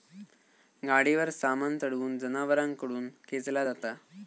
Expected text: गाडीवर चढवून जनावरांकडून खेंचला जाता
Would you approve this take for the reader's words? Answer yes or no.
no